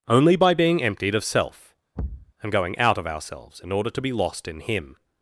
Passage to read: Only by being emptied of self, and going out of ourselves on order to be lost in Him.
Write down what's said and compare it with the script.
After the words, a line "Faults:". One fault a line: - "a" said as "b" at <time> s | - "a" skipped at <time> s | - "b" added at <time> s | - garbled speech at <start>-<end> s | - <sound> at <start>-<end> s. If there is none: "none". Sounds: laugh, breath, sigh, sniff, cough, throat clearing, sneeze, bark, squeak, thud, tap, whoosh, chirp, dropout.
Only by being emptied of self, and going out of ourselves in order to be lost in Him.
Faults:
- thud at 2.0-2.3 s
- "on" said as "in" at 3.6 s